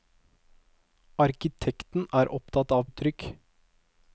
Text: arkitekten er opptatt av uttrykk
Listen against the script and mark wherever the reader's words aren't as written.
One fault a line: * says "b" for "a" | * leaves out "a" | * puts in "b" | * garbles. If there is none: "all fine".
all fine